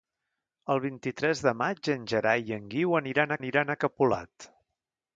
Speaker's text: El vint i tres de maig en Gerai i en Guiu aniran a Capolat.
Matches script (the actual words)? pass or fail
fail